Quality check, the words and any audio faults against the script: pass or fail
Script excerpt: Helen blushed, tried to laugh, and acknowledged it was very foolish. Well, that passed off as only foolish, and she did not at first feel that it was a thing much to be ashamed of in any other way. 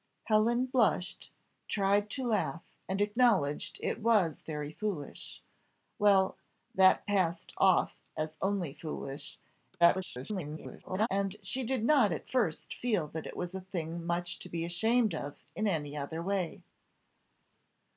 fail